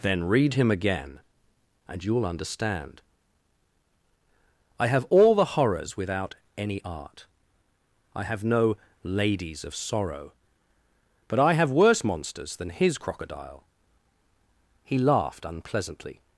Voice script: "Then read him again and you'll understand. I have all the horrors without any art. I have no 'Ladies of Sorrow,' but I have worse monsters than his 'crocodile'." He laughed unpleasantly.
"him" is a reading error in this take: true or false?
false